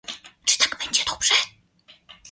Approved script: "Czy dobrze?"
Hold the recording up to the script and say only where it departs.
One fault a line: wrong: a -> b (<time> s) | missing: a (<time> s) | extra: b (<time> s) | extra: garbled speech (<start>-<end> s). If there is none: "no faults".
extra: tak będzie (0.6 s)